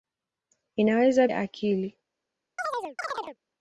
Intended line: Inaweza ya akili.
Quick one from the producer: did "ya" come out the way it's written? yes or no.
yes